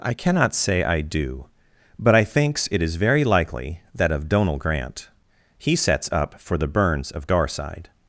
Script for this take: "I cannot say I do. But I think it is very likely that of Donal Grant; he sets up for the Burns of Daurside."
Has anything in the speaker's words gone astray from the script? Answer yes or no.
yes